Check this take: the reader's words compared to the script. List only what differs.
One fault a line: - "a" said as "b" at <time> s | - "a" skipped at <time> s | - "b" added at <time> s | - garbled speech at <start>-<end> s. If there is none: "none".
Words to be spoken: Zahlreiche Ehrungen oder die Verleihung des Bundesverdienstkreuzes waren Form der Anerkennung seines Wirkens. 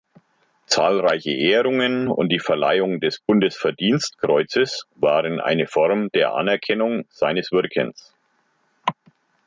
- "oder" said as "und" at 2.1 s
- "eine" added at 5.4 s